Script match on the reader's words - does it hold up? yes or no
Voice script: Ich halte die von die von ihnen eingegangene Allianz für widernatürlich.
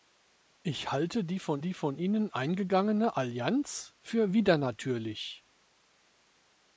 yes